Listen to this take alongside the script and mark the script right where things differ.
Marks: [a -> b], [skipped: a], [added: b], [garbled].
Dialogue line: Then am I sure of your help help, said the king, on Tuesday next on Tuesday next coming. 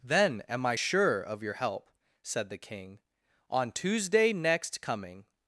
Then am I sure of your help [skipped: help,] said the king, on Tuesday next [skipped: on Tuesday next] coming.